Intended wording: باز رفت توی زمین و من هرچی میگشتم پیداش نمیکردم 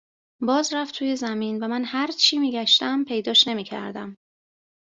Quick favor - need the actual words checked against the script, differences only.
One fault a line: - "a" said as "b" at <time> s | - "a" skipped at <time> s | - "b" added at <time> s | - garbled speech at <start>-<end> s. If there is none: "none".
none